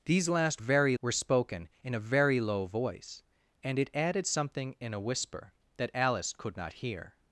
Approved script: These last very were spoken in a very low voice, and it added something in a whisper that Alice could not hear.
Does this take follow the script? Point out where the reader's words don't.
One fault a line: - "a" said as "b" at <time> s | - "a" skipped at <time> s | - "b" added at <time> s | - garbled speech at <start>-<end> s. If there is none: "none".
none